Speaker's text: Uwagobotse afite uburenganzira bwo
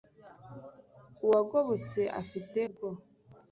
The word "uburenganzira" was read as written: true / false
false